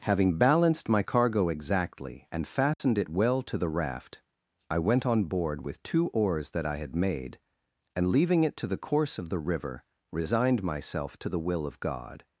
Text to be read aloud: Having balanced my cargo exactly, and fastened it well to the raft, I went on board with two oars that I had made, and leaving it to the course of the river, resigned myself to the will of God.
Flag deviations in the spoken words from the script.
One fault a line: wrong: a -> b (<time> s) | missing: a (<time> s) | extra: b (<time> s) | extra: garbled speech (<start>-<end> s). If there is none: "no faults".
no faults